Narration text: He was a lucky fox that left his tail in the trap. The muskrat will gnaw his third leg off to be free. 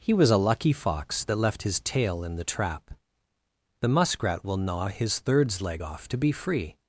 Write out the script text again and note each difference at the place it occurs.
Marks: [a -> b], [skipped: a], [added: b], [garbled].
He was a lucky fox that left his tail in the trap. The muskrat will gnaw his [third -> thirds] leg off to be free.